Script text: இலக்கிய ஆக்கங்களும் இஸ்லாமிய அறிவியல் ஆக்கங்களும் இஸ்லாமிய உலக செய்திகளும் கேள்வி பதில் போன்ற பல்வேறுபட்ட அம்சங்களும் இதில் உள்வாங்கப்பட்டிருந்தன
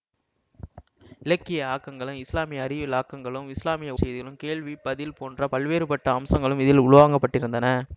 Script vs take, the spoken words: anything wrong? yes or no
yes